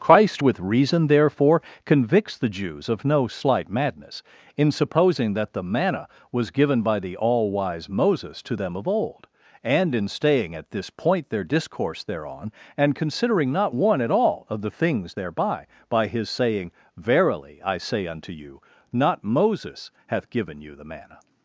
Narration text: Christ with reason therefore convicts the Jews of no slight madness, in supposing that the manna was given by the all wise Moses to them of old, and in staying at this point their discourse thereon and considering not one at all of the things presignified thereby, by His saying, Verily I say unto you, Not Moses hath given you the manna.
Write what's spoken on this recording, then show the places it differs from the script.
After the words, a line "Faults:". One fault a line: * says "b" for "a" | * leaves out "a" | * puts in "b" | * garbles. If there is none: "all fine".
Christ with reason therefore convicts the Jews of no slight madness, in supposing that the manna was given by the all wise Moses to them of old, and in staying at this point their discourse thereon and considering not one at all of the things thereby, by His saying, Verily I say unto you, Not Moses hath given you the manna.
Faults:
* leaves out "presignified"